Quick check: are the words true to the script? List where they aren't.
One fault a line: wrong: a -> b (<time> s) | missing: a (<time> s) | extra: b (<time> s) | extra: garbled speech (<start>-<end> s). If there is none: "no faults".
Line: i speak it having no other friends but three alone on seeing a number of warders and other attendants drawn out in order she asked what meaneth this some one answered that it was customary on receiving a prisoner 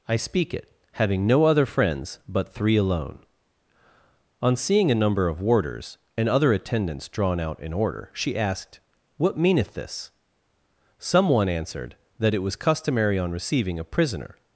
no faults